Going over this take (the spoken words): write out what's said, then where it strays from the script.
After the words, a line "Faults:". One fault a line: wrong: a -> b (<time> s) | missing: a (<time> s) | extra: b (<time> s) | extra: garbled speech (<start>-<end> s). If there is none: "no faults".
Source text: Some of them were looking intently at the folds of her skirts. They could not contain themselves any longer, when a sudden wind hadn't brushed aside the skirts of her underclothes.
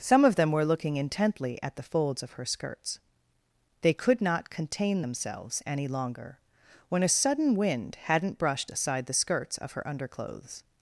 Some of them were looking intently at the folds of her skirts. They could not contain themselves any longer, when a sudden wind hadn't brushed aside the skirts of her underclothes.
Faults:
no faults